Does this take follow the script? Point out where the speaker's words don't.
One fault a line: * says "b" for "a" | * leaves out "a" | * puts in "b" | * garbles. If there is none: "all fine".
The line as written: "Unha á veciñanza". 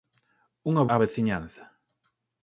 all fine